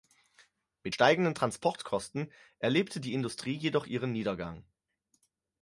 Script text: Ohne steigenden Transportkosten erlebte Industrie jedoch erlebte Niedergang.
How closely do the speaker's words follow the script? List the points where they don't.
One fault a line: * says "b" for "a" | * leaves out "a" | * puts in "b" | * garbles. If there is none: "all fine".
* says "Mit" for "Ohne"
* puts in "die"
* says "ihren" for "erlebte"